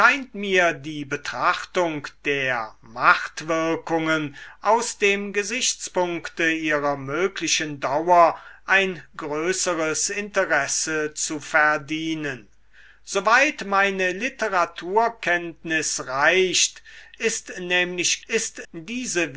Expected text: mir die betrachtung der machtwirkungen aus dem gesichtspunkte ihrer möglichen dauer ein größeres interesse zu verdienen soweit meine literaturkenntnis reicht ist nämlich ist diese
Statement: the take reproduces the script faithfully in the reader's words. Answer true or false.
true